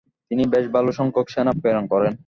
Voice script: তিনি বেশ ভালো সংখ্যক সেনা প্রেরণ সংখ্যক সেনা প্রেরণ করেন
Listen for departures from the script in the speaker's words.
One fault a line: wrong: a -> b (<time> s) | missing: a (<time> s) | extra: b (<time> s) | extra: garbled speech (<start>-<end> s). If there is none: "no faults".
missing: সংখ্যক সেনা প্রেরণ (1.9 s)